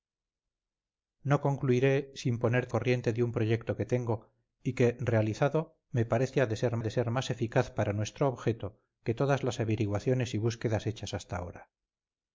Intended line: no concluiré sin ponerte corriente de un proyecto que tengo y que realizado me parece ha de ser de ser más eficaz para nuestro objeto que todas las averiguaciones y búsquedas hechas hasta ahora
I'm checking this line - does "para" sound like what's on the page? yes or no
yes